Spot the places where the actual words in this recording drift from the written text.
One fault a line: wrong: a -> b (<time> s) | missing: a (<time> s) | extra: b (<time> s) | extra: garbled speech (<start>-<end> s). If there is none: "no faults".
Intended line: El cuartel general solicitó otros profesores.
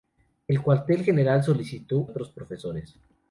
no faults